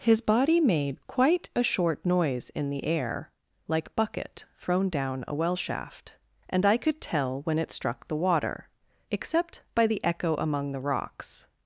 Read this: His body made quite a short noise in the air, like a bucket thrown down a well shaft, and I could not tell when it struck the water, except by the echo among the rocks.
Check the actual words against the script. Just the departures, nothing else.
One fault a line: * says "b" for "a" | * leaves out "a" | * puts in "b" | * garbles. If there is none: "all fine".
* leaves out "a"
* leaves out "not"